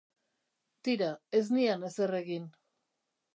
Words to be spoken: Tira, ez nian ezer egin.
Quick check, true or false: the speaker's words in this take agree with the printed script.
true